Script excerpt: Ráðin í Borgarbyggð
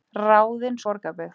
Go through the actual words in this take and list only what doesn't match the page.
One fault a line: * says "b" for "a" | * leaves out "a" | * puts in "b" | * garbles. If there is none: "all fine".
all fine